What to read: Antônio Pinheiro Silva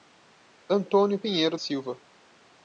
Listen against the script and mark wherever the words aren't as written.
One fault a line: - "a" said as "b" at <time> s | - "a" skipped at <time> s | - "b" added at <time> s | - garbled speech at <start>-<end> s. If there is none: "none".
none